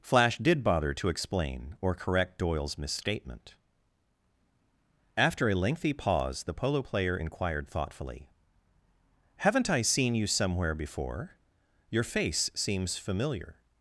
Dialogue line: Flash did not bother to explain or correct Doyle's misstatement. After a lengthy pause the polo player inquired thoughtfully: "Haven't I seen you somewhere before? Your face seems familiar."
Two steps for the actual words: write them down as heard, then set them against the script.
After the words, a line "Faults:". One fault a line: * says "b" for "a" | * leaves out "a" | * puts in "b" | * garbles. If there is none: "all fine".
Flash did bother to explain or correct Doyle's misstatement. After a lengthy pause the polo player inquired thoughtfully: "Haven't I seen you somewhere before? Your face seems familiar."
Faults:
* leaves out "not"